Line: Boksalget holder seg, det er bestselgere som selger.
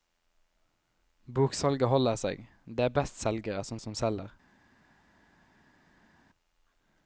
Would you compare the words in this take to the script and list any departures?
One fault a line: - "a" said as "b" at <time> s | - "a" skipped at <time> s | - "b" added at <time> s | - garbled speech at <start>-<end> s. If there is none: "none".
- "som" added at 3.8 s